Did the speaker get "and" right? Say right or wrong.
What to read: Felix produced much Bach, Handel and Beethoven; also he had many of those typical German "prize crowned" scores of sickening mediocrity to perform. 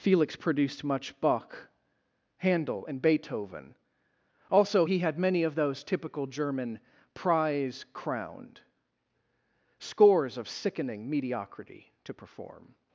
right